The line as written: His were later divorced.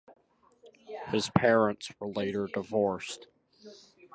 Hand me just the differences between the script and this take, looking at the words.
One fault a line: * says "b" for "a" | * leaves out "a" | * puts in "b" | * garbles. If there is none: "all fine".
* puts in "parents"